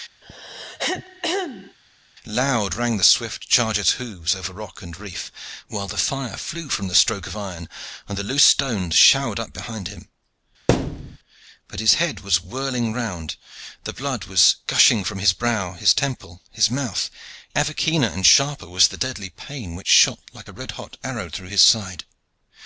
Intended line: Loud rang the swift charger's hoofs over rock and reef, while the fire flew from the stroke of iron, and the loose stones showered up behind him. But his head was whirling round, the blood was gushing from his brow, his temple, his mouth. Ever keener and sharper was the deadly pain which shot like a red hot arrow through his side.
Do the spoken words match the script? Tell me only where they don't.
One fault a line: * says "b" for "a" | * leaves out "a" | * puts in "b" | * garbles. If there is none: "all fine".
all fine